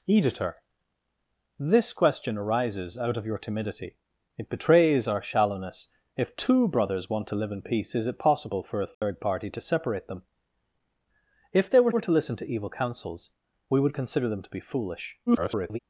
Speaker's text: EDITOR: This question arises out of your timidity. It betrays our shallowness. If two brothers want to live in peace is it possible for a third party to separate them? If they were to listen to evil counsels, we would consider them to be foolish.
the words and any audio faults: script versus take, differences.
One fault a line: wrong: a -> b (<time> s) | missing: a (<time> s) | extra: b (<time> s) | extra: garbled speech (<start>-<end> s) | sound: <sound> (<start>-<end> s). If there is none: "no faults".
sound: dropout (8.9-9.0 s)
extra: were (11.9 s)
extra: garbled speech (15.3-15.8 s)